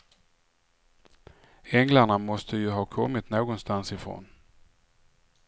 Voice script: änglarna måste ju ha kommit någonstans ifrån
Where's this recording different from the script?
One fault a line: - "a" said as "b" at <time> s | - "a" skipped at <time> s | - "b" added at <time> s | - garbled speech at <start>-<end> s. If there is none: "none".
none